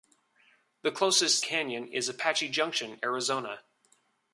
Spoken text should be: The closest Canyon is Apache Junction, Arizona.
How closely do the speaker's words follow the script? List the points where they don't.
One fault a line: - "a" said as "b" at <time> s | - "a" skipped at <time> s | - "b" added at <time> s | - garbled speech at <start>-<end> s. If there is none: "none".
none